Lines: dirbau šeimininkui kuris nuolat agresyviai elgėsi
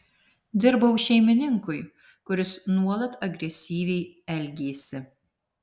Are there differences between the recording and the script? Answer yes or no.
no